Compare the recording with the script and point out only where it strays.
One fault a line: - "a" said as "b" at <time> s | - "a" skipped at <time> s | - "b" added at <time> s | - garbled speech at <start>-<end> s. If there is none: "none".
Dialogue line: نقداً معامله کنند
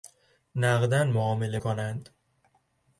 none